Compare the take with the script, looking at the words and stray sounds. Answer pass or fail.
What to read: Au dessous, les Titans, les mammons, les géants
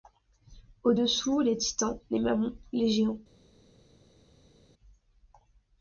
pass